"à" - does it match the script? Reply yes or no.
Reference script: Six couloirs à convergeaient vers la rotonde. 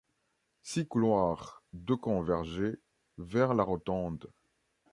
no